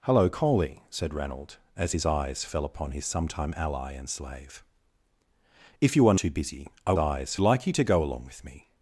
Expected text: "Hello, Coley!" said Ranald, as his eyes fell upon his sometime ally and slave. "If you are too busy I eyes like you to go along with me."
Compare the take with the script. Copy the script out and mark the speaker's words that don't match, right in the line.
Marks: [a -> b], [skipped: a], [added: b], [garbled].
"Hello, Coley!" said Ranald, as his eyes fell upon his sometime ally and slave. "If you are too busy I eyes like you to go along with me."